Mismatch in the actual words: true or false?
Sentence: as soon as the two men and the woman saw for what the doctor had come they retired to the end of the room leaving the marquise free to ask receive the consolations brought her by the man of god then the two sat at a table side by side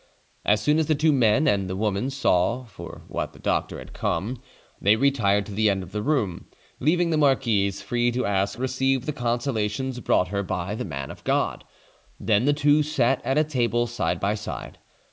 false